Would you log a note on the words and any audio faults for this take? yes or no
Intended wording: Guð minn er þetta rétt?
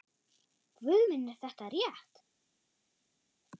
no